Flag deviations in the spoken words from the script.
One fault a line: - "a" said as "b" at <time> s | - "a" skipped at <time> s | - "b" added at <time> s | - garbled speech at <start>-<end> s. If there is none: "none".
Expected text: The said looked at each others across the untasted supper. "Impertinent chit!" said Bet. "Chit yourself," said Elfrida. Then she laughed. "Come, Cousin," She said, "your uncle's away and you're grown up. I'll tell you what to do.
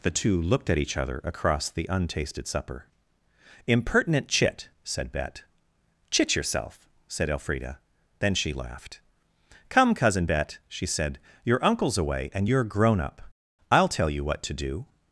- "said" said as "two" at 0.1 s
- "others" said as "other" at 1.0 s
- "Bet" added at 10.2 s